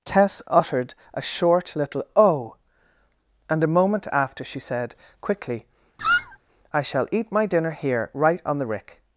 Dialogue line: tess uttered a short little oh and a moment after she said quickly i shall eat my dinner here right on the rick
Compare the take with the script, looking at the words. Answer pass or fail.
pass